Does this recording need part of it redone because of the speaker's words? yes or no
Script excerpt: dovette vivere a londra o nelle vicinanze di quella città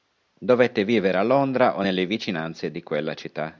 no